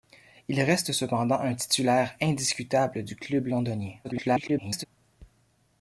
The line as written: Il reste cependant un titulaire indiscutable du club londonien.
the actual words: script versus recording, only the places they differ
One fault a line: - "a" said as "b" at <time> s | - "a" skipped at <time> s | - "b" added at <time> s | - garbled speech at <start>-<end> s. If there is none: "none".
- garbled speech at 4.0-4.9 s